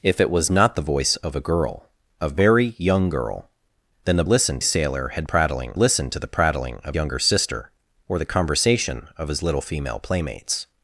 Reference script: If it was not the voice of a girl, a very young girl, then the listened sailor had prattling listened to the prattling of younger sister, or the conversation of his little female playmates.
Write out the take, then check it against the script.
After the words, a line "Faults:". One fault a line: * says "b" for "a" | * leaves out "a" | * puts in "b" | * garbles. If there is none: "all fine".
If it was not the voice of a girl, a very young girl, then the listened sailor had prattling listened to the prattling of younger sister, or the conversation of his little female playmates.
Faults:
all fine